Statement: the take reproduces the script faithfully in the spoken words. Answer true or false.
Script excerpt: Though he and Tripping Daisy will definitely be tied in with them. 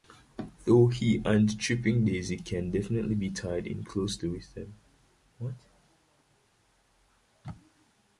false